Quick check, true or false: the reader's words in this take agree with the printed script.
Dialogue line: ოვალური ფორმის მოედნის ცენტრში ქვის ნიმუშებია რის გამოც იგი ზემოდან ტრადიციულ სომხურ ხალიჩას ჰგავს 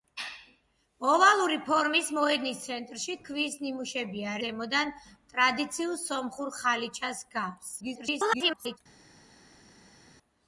false